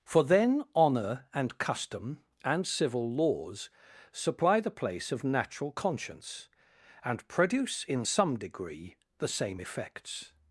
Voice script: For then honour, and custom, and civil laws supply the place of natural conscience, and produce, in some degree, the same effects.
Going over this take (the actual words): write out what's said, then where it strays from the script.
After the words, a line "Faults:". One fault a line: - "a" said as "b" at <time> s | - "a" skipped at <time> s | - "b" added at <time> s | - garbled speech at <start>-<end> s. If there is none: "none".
For then honour, and custom, and civil laws supply the place of natural conscience, and produce, in some degree, the same effects.
Faults:
none